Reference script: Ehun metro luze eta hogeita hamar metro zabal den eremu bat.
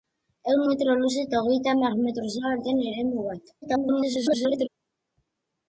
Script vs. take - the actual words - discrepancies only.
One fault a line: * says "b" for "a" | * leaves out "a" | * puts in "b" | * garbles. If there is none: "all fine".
* garbles